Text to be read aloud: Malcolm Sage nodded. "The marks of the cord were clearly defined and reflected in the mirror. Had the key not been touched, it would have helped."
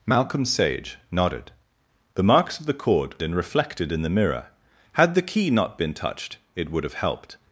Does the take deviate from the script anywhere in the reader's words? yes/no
yes